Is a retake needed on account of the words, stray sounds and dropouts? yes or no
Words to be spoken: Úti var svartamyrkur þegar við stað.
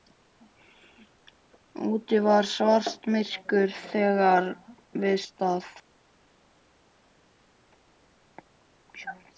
no